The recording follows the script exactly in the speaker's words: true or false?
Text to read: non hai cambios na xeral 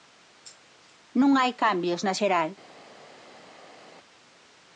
true